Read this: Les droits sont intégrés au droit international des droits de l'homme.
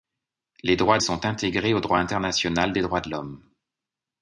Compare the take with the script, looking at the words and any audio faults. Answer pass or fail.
pass